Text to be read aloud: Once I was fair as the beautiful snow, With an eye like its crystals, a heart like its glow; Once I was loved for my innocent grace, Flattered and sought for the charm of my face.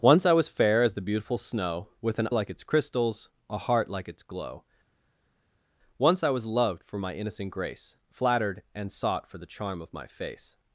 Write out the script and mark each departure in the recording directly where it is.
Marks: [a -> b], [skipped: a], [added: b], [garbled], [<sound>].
Once I was fair as the beautiful snow, With an [skipped: eye] like its crystals, a heart like its glow; Once I was loved for my innocent grace, Flattered and sought for the charm of my face.